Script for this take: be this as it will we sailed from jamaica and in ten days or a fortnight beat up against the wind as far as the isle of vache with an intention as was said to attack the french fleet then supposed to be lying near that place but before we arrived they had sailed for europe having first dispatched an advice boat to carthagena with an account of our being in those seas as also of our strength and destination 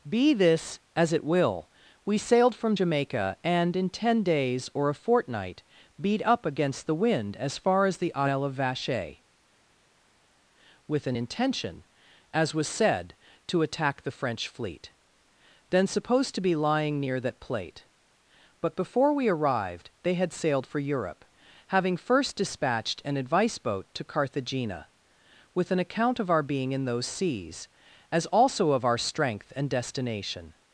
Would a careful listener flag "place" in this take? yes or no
yes